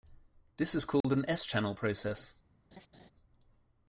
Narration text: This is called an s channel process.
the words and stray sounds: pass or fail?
fail